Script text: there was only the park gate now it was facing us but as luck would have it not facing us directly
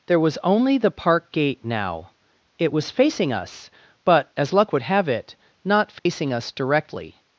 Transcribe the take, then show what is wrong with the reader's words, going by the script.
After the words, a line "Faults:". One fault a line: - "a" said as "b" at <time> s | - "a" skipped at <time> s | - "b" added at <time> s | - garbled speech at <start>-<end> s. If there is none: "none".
there was only the park gate now it was facing us but as luck would have it not facing us directly
Faults:
none